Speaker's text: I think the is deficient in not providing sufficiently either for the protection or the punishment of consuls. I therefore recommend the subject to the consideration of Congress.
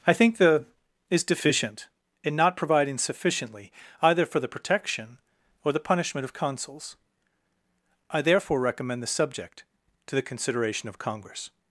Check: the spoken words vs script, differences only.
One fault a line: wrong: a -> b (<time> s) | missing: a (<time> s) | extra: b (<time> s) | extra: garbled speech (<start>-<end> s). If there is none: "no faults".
no faults